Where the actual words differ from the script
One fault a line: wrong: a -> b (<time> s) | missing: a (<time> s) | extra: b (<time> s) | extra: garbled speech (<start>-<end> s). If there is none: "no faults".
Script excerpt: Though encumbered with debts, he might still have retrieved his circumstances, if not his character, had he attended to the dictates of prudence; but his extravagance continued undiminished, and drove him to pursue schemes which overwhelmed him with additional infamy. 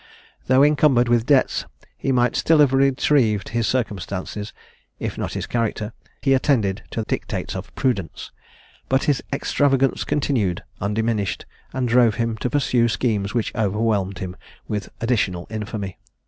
missing: had (5.9 s)
missing: the (7.0 s)